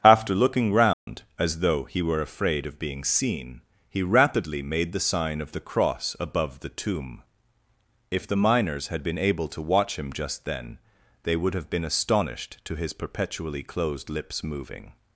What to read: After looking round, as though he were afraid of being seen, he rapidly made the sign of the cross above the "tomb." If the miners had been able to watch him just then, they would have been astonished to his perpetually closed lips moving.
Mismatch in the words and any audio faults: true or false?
true